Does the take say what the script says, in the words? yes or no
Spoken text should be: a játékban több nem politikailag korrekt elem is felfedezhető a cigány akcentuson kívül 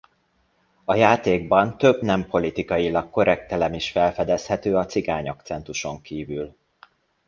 yes